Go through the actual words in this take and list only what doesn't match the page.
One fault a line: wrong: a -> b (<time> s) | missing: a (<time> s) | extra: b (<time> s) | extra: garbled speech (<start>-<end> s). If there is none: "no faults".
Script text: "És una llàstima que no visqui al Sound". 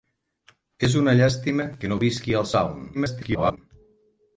extra: garbled speech (2.9-3.6 s)